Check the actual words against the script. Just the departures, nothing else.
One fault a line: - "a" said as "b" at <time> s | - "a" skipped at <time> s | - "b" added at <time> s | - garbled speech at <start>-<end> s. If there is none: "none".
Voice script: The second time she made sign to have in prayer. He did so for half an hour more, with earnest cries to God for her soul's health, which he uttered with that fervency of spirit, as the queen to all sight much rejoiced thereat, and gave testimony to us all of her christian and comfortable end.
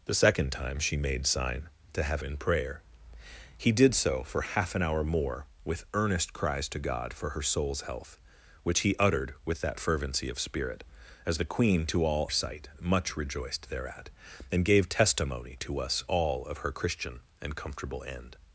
none